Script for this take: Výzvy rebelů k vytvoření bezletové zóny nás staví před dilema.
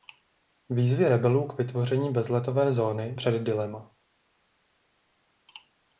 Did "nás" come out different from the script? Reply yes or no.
yes